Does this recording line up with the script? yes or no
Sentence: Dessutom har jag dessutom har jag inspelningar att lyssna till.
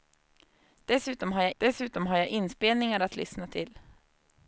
yes